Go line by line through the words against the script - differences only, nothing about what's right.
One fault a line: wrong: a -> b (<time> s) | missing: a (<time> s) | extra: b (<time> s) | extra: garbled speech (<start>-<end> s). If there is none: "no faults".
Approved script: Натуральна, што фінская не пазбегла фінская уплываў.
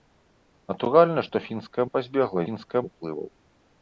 no faults